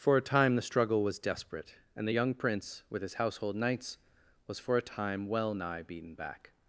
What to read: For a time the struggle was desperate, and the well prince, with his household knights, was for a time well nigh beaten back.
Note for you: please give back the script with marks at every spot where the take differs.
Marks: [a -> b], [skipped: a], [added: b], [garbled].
For a time the struggle was desperate, and the [well -> young] prince, with his household knights, was for a time well nigh beaten back.